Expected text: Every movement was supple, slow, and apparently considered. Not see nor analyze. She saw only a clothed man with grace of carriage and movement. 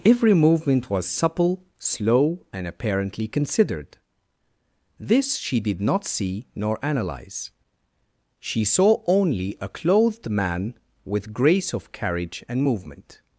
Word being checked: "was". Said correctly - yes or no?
yes